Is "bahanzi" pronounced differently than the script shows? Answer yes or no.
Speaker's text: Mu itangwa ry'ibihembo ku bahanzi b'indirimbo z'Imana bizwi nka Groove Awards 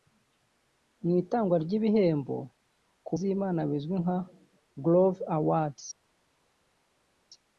yes